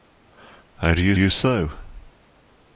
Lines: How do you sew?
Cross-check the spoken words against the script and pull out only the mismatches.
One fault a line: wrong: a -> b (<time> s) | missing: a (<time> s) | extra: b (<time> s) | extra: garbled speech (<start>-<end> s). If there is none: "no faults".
extra: you (1.2 s)